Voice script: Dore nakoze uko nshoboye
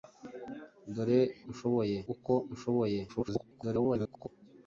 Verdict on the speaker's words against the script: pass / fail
fail